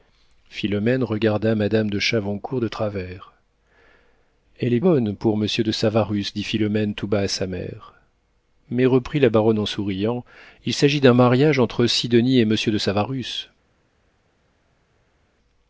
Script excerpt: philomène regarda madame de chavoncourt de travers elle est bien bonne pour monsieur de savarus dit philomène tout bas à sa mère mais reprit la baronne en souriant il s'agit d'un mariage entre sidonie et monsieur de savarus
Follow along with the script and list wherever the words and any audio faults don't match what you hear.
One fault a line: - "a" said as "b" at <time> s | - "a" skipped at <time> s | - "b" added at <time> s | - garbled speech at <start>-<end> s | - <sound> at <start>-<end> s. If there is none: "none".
- "bien" skipped at 4.8 s